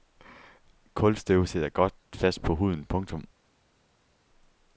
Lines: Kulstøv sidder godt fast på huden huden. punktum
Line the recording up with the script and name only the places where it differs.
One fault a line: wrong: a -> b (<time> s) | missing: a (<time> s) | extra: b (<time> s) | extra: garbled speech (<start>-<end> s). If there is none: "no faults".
missing: huden (2.9 s)